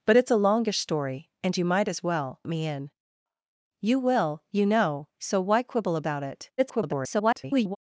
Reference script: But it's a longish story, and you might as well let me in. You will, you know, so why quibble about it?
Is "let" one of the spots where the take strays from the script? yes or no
yes